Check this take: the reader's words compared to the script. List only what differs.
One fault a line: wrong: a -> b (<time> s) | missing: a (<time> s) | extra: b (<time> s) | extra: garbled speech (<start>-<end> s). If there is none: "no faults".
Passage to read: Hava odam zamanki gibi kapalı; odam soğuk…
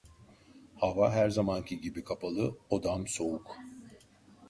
wrong: odam -> her (1.1 s)